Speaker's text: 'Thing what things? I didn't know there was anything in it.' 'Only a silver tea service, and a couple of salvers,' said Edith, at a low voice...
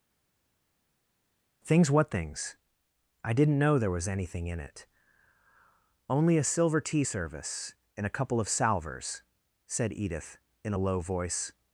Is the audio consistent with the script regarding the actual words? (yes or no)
no